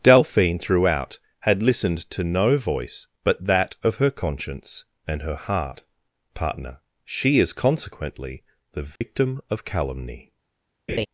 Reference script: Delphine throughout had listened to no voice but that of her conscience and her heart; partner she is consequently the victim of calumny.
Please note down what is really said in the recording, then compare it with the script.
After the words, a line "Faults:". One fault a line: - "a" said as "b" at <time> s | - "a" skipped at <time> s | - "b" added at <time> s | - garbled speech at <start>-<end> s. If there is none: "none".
Delphine throughout had listened to no voice but that of her conscience and her heart; partner she is consequently the victim of calumny.
Faults:
none